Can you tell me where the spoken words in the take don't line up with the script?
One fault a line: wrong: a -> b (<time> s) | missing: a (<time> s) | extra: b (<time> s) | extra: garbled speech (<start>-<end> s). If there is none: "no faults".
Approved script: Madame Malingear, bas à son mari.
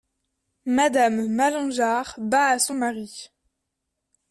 no faults